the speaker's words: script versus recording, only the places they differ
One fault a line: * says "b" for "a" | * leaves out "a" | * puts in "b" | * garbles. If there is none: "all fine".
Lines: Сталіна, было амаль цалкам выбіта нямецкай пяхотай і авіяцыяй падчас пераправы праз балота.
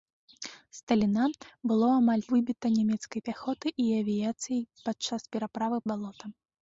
* leaves out "цалкам"
* leaves out "праз"